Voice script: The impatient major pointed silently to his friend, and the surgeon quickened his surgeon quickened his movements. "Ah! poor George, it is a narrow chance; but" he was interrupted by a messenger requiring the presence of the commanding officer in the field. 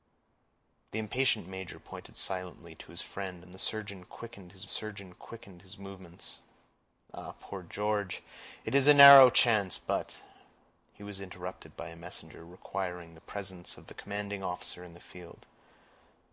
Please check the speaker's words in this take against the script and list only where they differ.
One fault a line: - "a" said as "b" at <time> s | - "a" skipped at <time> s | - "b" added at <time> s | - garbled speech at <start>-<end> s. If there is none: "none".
none